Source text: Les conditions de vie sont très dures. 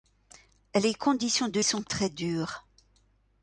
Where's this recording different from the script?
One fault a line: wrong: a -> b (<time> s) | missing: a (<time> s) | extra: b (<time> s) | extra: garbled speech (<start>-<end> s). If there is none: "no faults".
missing: vie (1.6 s)